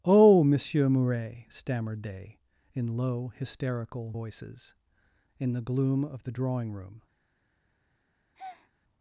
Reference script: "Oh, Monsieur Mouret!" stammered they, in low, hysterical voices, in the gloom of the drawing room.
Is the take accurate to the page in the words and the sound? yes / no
no